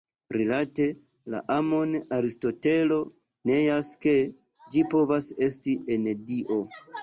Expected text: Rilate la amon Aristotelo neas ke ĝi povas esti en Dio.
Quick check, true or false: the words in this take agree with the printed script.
true